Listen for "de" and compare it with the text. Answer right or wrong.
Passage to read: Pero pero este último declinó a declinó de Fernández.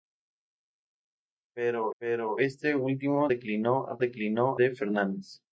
right